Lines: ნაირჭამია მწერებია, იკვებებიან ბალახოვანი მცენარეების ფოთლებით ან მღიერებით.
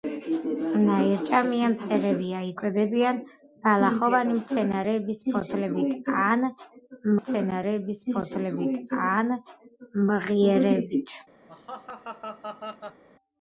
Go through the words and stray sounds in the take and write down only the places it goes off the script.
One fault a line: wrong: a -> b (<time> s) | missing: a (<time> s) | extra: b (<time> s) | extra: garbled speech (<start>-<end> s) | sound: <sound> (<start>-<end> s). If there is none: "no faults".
extra: მცენარეების ფოთლებით ან (7.2 s)
sound: laugh (11.5-13.0 s)